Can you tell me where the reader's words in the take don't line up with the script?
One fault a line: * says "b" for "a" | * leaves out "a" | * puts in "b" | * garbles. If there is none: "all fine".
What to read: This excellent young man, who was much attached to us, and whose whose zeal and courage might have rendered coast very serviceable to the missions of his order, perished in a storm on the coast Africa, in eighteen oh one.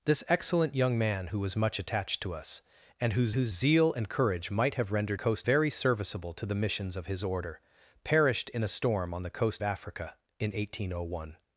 all fine